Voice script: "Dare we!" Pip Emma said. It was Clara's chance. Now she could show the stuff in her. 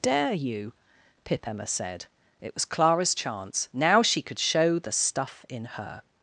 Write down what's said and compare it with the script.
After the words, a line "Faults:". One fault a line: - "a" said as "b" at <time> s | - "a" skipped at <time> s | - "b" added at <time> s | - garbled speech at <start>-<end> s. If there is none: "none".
"Dare you!" Pip Emma said. It was Clara's chance. Now she could show the stuff in her.
Faults:
- "we" said as "you" at 0.3 s